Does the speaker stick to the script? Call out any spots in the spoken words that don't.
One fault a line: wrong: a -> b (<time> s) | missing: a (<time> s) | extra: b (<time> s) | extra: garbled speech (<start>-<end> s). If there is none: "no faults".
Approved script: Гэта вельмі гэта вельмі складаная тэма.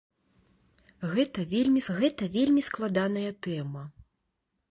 no faults